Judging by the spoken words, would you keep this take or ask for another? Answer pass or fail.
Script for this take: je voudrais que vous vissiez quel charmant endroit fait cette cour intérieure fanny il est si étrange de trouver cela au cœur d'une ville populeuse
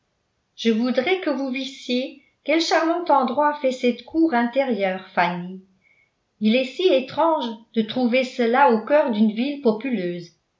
pass